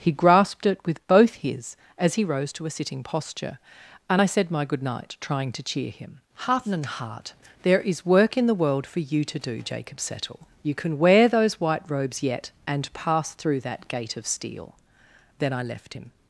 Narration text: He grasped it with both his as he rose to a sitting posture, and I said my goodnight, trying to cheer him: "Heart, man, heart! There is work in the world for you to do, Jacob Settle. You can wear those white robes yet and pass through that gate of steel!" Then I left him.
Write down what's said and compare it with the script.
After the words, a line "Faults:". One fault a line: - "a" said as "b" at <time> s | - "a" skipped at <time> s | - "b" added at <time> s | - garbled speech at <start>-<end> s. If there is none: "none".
He grasped it with both his as he rose to a sitting posture, and I said my goodnight, trying to cheer him: "Heart, and, heart! There is work in the world for you to do, Jacob Settle. You can wear those white robes yet and pass through that gate of steel!" Then I left him.
Faults:
- "man" said as "and" at 6.7 s